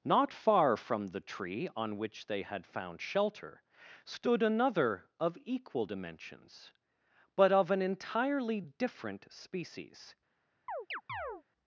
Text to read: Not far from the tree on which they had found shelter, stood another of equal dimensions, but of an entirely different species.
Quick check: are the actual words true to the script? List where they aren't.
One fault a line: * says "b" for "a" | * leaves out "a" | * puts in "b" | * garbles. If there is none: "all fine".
all fine